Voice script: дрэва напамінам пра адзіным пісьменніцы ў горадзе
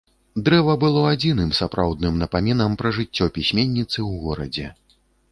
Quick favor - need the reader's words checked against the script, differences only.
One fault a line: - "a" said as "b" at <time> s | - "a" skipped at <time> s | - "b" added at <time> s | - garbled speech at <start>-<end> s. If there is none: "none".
- "было адзіным сапраўдным" added at 0.8 s
- "адзіным" said as "жыццё" at 3.0 s